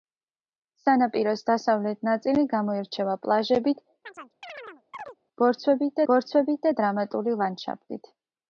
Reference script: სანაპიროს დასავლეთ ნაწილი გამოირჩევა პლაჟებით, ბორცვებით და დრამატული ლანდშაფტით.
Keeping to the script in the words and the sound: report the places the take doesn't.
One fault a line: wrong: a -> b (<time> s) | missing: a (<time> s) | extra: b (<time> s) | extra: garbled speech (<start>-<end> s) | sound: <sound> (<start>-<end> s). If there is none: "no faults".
sound: chirp (4.1-5.2 s)
extra: ბორცვებით (6.1 s)